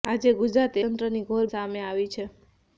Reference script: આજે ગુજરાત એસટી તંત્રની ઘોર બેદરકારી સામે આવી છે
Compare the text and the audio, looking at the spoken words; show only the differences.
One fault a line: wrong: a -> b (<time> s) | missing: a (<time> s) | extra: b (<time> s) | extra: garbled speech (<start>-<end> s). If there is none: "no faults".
missing: એસટી (0.8 s)
missing: બેદરકારી (1.5 s)